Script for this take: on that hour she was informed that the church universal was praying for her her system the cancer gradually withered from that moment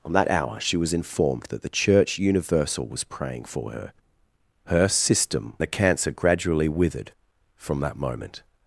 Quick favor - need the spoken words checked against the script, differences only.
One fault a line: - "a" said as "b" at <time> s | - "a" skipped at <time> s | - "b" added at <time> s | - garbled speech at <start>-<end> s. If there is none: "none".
none